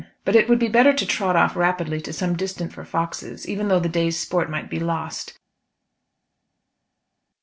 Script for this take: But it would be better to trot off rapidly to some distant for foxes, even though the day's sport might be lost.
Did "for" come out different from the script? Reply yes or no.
no